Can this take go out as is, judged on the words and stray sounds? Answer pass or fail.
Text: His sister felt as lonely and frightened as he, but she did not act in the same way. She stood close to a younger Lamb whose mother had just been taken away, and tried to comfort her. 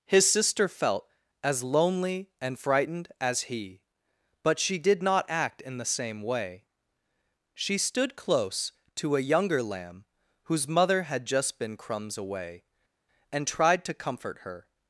fail